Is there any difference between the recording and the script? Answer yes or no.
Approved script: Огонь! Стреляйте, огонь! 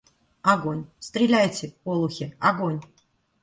yes